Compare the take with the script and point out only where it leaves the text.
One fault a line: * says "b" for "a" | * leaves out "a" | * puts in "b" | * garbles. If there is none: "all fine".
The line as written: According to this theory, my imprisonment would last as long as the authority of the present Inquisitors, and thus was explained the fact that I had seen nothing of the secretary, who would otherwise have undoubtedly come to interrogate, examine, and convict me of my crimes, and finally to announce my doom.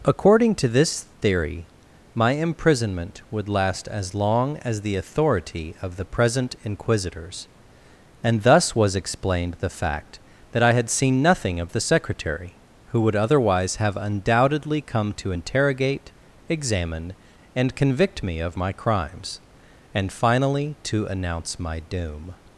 all fine